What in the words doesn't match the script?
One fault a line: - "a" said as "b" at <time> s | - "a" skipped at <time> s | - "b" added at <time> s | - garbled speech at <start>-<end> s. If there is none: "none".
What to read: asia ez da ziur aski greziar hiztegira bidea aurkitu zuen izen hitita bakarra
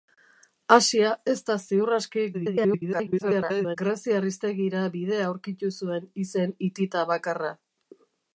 - garbled speech at 2.3-3.8 s